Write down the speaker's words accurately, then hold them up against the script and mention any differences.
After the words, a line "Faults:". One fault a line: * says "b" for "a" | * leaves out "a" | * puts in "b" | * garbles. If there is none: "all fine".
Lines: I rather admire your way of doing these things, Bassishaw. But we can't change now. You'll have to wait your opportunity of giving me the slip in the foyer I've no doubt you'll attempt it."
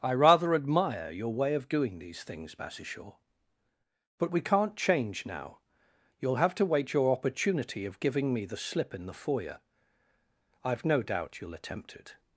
I rather admire your way of doing these things, Bassishaw. But we can't change now. You'll have to wait your opportunity of giving me the slip in the foyer I've no doubt you'll attempt it."
Faults:
all fine